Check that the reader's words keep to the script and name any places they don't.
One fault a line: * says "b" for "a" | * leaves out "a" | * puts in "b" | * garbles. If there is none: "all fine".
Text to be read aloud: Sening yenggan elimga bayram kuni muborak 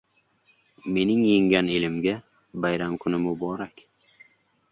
* says "Mening" for "Sening"